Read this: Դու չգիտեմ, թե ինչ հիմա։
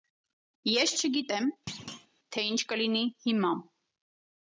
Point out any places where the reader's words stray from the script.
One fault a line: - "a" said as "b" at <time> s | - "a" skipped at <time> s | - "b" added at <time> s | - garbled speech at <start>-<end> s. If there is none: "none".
- "Դու" said as "Ես" at 0.7 s
- "կլինի" added at 2.7 s